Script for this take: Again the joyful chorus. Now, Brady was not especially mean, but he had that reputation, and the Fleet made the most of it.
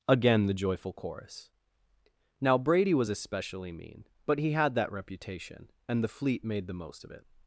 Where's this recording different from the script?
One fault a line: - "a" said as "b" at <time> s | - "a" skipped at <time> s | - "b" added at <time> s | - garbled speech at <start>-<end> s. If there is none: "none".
- "not" skipped at 3.1 s